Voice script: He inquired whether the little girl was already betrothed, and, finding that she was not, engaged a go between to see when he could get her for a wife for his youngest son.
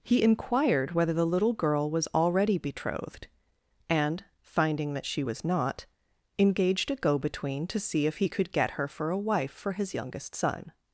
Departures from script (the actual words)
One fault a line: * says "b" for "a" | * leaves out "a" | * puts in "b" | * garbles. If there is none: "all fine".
* says "if" for "when"